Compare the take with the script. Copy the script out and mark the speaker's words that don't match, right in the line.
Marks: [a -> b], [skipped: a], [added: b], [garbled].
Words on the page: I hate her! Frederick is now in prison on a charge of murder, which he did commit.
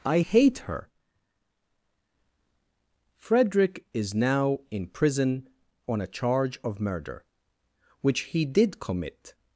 I hate her! Frederick is now in prison on a charge of murder, which he did commit.